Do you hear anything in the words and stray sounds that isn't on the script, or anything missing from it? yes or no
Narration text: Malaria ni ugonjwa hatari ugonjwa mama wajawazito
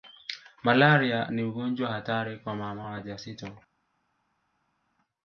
yes